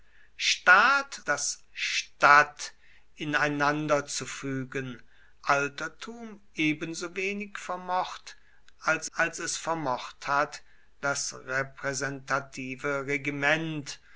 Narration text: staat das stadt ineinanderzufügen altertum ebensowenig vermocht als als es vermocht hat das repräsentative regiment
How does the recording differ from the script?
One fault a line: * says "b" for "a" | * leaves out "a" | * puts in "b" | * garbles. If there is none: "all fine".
all fine